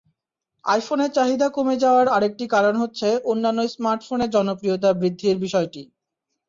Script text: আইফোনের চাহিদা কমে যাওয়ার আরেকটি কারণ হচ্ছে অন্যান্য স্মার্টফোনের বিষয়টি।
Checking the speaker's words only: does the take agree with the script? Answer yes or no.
no